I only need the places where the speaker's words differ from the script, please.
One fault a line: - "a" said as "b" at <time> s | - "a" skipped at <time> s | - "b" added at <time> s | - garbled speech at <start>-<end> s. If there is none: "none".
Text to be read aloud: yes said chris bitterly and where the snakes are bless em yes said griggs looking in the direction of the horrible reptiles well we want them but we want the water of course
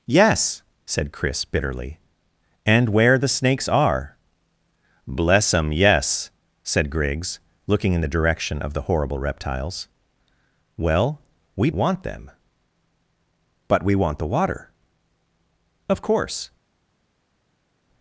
none